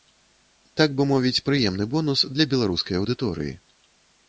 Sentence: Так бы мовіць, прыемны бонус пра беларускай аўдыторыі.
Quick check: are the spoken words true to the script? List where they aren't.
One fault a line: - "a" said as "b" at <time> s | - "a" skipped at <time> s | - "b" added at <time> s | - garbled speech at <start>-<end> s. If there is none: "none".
- "пра" said as "для" at 2.3 s